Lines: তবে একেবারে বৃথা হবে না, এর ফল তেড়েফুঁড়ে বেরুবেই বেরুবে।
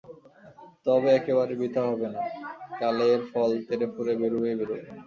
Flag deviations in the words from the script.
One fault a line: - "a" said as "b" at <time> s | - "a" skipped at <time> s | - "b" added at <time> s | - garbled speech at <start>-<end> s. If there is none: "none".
- "কালে" added at 2.8 s